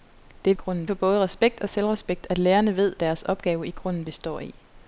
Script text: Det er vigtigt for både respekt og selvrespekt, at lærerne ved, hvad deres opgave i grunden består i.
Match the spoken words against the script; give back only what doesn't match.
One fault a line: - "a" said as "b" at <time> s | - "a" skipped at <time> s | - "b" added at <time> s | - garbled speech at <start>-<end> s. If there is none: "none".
- "vigtigt" said as "grunden" at 0.5 s
- "hvad" skipped at 3.0 s